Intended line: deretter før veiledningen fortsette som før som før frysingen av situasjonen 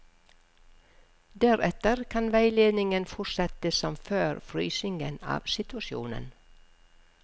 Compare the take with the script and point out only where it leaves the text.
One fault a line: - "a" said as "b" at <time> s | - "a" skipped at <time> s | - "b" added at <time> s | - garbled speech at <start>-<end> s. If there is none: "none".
- "før" said as "kan" at 2.1 s
- "som før" skipped at 4.4 s